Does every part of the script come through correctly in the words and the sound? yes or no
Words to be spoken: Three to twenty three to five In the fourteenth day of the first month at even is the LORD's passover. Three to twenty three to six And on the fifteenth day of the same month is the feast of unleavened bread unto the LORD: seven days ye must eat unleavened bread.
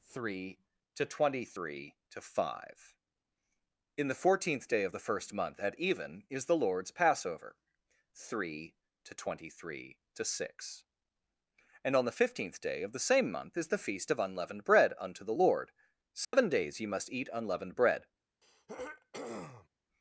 no